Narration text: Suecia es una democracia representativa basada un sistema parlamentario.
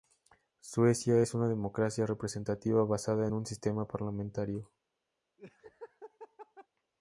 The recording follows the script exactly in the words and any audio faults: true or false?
false